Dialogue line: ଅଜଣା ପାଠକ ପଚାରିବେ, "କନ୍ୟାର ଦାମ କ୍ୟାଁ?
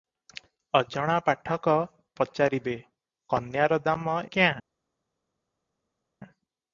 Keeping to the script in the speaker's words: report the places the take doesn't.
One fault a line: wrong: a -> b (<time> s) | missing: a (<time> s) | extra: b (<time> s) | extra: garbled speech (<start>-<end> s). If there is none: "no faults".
no faults